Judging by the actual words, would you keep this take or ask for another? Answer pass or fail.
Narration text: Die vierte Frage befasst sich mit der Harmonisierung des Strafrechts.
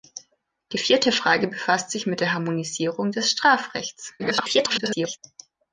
fail